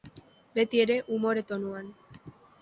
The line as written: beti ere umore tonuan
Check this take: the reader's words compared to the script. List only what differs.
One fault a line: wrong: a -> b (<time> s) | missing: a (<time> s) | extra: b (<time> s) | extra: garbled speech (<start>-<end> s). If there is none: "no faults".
no faults